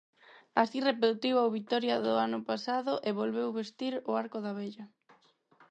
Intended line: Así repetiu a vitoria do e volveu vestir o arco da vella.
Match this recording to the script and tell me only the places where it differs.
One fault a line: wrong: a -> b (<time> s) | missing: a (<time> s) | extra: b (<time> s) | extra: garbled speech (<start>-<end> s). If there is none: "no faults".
extra: ano pasado (2.2 s)